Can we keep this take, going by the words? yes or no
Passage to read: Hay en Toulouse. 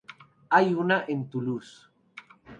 no